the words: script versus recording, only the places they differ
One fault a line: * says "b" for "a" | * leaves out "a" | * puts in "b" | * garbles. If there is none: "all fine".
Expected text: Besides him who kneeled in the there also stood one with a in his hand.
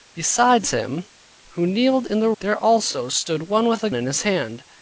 all fine